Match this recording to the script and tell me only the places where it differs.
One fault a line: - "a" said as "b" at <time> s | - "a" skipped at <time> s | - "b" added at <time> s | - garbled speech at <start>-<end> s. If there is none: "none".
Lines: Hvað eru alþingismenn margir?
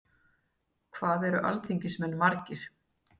none